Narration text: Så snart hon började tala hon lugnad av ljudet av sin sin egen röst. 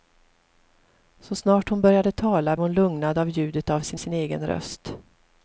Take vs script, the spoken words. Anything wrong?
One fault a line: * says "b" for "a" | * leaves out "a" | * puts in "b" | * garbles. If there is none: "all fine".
all fine